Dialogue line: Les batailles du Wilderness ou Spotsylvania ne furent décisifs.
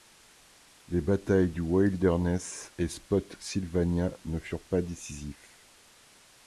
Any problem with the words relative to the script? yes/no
yes